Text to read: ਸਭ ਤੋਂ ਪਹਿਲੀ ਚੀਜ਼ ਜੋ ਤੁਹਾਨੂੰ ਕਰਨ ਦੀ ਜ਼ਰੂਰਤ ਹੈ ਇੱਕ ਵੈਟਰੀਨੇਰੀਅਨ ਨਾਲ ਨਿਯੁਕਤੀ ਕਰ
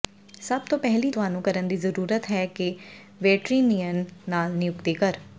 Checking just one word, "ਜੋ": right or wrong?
wrong